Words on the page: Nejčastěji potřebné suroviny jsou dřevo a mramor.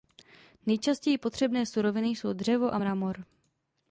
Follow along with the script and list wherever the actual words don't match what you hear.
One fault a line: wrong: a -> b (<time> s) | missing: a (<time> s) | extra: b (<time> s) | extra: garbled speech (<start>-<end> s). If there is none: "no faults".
no faults